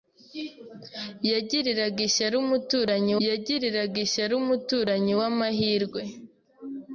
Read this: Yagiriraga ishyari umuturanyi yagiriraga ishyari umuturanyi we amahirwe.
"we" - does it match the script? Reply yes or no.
yes